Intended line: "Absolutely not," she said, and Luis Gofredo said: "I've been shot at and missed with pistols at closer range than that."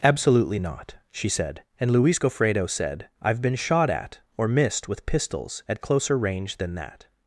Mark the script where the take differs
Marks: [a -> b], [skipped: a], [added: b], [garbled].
"Absolutely not," she said, and Luis Gofredo said: "I've been shot at [and -> or] missed with pistols at closer range than that."